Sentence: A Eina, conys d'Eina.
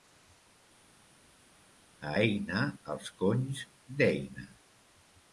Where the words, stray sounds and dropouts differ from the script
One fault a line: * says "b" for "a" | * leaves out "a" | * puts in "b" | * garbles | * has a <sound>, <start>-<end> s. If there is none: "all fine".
* puts in "els"